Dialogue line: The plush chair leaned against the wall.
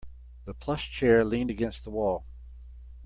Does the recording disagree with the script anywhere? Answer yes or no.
no